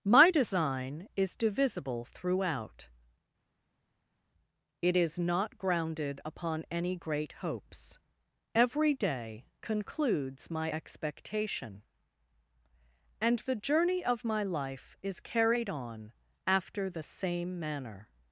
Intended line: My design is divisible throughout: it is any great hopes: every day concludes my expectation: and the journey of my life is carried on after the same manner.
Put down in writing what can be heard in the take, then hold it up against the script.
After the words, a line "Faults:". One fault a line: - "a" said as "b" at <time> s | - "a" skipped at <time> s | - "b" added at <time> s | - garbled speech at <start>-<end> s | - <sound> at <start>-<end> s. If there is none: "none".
My design is divisible throughout: it is not grounded upon any great hopes: every day concludes my expectation: and the journey of my life is carried on after the same manner.
Faults:
- "not grounded upon" added at 5.2 s